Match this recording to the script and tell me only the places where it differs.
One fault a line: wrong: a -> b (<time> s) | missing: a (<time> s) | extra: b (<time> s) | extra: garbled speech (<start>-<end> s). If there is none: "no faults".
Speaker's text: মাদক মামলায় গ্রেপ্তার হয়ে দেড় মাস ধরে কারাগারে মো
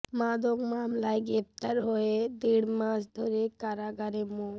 no faults